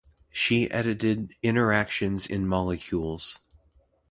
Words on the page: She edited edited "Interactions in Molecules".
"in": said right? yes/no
yes